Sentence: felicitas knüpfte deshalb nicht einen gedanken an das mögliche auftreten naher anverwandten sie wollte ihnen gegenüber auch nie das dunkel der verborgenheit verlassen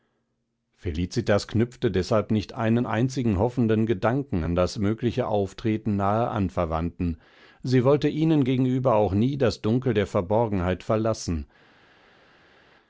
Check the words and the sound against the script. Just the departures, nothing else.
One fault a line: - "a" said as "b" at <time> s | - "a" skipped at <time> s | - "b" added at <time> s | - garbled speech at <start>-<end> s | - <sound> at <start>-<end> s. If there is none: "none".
- "einzigen hoffenden" added at 2.9 s